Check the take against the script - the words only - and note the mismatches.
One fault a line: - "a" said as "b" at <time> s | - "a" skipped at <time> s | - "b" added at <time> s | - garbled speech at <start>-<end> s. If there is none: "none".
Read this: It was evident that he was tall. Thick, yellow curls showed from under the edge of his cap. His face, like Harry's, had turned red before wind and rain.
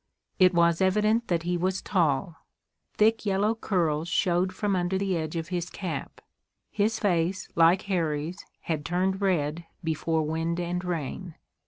none